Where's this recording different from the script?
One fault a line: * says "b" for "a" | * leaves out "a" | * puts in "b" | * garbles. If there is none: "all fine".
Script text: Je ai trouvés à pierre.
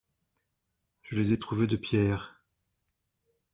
* puts in "les"
* says "de" for "à"